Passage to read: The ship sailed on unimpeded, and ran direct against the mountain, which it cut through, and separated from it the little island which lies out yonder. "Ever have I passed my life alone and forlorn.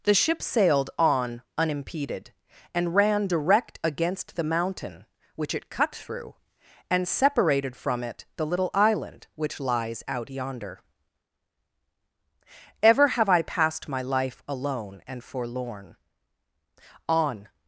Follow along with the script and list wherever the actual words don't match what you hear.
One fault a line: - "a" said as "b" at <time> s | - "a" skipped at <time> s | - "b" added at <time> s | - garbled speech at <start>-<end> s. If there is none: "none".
- "On" added at 17.1 s